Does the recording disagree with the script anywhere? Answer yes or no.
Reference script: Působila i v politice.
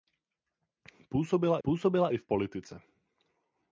yes